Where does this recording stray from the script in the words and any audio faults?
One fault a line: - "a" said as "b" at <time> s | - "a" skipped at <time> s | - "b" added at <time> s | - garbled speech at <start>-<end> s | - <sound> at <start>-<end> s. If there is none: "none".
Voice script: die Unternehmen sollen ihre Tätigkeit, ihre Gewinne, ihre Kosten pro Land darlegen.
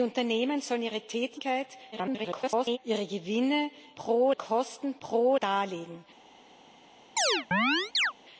- garbled speech at 1.9-2.8 s
- "ihre" said as "pro" at 4.0 s
- "Land" skipped at 5.3 s
- chirp at 7.2-8.1 s